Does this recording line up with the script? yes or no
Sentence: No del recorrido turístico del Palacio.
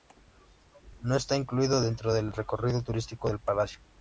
no